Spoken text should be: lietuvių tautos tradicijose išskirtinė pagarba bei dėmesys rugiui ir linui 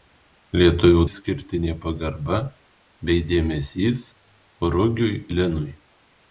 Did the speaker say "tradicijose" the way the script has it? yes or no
no